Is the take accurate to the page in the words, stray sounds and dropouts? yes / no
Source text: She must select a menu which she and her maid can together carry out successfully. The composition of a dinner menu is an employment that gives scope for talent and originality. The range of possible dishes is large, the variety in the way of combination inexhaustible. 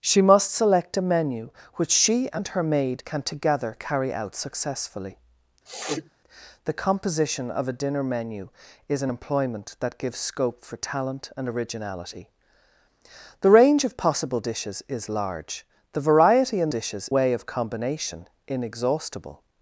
no